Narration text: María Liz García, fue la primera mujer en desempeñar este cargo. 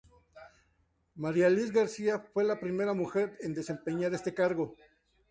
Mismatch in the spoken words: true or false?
false